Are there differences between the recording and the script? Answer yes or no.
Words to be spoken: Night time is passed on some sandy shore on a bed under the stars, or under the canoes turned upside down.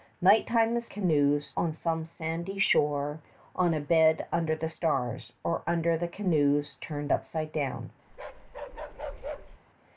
yes